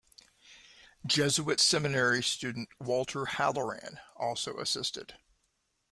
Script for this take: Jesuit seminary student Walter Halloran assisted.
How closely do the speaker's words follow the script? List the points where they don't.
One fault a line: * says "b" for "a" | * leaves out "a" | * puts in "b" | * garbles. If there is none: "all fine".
* puts in "also"